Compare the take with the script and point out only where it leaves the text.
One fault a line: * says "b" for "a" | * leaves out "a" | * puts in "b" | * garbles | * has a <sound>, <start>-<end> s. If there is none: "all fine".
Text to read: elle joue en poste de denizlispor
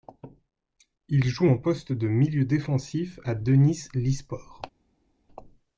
* says "il" for "elle"
* puts in "milieu défensif à"